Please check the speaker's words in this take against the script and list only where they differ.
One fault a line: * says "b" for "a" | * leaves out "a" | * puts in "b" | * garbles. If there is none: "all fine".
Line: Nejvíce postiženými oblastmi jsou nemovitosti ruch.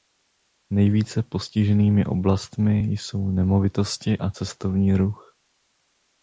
* puts in "a cestovní"